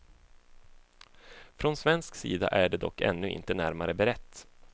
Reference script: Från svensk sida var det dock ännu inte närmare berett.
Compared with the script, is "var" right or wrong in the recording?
wrong